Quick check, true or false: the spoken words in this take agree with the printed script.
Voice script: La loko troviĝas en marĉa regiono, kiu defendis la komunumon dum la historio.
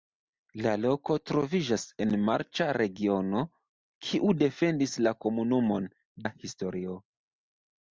false